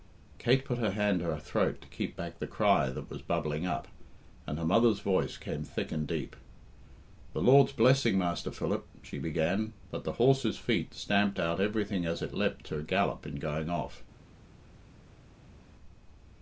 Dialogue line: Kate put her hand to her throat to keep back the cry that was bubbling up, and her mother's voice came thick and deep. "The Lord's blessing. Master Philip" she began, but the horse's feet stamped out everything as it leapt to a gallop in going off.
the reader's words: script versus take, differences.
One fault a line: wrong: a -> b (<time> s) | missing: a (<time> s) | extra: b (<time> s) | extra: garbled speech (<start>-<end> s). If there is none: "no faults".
no faults